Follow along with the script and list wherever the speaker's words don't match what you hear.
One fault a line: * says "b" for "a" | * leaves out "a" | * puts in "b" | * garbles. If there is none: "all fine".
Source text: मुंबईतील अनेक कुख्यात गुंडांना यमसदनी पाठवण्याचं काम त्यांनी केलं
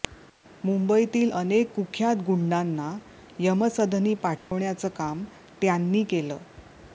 all fine